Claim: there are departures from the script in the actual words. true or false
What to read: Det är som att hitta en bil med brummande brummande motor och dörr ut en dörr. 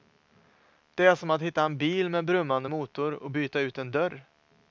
true